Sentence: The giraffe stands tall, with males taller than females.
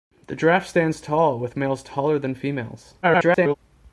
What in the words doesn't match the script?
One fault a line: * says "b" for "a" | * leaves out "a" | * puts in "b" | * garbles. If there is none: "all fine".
* garbles